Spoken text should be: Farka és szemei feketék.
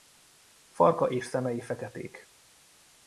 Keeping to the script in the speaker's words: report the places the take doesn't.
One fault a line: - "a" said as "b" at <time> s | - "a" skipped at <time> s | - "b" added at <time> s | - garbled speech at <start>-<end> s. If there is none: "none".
none